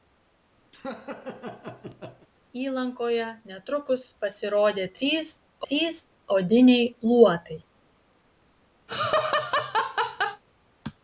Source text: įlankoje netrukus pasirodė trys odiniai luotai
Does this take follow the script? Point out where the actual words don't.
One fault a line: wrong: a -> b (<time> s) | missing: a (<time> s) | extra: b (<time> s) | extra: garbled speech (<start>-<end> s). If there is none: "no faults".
extra: trys (5.7 s)